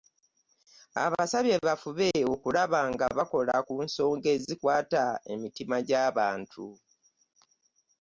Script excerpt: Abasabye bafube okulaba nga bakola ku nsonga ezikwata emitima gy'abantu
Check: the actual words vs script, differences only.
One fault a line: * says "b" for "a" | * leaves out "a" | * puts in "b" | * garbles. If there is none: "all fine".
all fine